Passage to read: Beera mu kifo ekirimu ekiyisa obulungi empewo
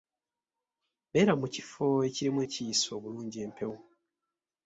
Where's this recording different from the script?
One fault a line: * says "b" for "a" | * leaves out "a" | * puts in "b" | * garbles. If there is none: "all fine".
all fine